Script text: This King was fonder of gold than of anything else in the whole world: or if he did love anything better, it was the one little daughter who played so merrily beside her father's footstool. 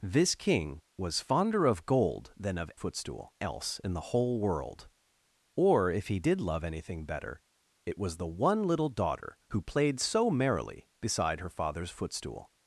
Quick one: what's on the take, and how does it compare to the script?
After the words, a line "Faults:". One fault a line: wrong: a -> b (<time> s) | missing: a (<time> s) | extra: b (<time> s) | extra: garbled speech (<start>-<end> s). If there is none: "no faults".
This King was fonder of gold than of footstool else in the whole world: or if he did love anything better, it was the one little daughter who played so merrily beside her father's footstool.
Faults:
wrong: anything -> footstool (2.7 s)